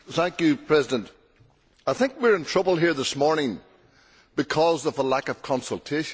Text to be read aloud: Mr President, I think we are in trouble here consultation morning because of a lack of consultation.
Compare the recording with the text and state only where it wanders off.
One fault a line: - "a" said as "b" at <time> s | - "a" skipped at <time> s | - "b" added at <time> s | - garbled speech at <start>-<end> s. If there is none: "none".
- "consultation" said as "this" at 2.9 s